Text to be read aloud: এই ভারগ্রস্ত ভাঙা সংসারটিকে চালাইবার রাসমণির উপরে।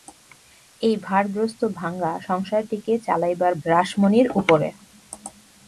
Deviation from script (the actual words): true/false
false